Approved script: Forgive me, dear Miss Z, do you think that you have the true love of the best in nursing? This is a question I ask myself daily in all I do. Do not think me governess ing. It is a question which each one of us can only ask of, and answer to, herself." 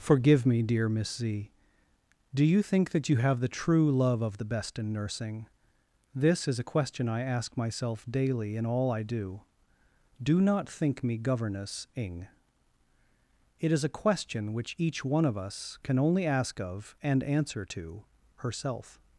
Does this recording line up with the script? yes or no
yes